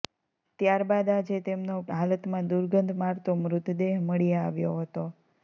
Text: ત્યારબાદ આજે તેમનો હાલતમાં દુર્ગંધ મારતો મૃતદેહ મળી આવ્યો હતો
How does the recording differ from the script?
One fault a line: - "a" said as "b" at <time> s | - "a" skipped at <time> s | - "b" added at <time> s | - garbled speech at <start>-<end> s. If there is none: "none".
none